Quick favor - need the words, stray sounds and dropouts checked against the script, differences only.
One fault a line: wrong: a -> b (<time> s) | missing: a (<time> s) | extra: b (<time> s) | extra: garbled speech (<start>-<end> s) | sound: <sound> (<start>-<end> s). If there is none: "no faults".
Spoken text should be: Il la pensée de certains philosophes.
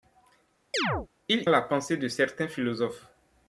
sound: chirp (0.7-1.1 s)